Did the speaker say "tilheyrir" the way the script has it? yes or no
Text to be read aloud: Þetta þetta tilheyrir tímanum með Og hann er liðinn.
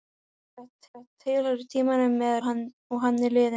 yes